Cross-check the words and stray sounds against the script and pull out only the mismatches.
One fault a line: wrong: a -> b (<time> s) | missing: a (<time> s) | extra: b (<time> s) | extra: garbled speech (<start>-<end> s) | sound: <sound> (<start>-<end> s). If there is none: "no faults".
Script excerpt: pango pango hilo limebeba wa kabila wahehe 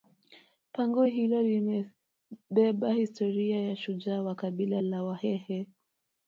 missing: pango (1.0 s)
extra: historia ya shujaa (2.9 s)
extra: la (4.8 s)